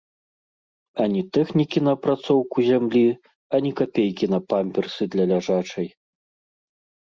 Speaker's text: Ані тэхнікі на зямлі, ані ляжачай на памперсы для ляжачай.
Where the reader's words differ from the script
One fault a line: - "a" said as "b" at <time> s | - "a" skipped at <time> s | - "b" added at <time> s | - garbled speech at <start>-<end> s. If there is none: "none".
- "апрацоўку" added at 2.0 s
- "ляжачай" said as "капейкі" at 3.8 s